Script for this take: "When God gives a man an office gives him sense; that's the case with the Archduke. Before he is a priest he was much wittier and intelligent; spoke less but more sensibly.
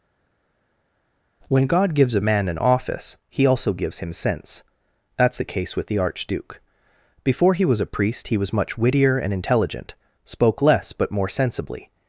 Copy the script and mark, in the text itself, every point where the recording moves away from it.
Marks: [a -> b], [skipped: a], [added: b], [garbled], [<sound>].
"When God gives a man an office [added: he also] gives him sense; that's the case with the Archduke. Before he [is -> was] a priest he was much wittier and intelligent; spoke less but more sensibly.